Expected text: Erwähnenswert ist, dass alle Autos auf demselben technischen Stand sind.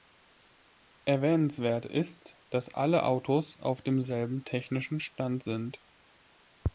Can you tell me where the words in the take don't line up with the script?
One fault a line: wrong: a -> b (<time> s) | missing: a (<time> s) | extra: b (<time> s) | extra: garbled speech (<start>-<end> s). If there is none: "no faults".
no faults